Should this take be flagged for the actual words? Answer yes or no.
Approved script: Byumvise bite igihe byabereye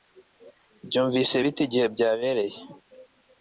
no